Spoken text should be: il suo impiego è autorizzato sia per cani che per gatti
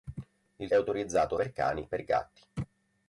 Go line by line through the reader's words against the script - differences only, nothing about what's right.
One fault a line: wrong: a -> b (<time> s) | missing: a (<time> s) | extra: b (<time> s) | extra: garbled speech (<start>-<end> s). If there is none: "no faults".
missing: suo impiego (0.7 s)
missing: sia (1.4 s)
missing: che (1.9 s)